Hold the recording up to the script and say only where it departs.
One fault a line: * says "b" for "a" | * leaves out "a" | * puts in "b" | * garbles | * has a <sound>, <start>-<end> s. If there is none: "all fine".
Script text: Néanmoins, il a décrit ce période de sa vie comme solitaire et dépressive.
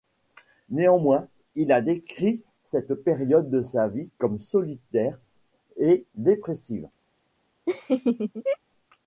* says "cette" for "ce"
* has a laugh, 7.7-8.6 s